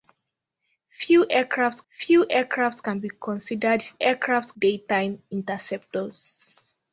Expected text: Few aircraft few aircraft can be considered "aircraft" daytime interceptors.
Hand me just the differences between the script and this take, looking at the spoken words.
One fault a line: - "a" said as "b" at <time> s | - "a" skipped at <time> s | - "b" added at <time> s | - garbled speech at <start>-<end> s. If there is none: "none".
none